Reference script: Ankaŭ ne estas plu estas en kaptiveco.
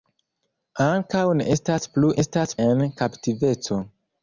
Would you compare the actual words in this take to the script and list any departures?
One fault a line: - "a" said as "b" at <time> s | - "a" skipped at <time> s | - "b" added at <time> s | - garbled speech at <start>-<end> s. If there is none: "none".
none